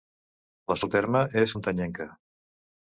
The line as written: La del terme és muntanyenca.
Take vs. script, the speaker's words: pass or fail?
pass